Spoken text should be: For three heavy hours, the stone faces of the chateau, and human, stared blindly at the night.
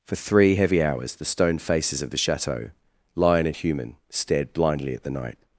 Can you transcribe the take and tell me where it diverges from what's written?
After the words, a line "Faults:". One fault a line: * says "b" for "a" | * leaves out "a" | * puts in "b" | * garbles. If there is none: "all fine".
For three heavy hours, the stone faces of the chateau, lion and human, stared blindly at the night.
Faults:
* puts in "lion"